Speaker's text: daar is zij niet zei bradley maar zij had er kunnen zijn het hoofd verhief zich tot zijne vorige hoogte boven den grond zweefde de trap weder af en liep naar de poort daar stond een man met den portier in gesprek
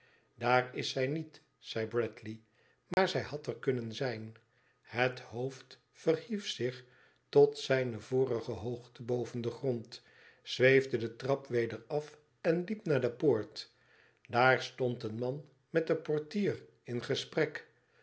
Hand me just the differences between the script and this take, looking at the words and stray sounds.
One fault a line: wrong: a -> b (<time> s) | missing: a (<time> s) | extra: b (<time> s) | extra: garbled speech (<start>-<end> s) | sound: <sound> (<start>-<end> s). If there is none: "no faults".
sound: dropout (2.9-3.0 s)